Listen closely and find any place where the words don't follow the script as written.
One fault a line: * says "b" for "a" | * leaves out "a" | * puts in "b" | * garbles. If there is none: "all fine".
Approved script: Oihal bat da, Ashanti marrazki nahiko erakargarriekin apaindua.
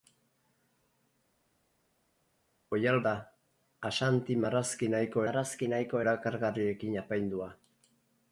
* leaves out "bat"
* puts in "marrazki nahiko"